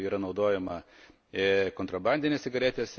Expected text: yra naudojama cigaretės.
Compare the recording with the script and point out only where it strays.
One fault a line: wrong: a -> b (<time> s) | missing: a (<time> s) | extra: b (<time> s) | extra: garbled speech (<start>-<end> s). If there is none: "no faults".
extra: kontrabandinės (1.8 s)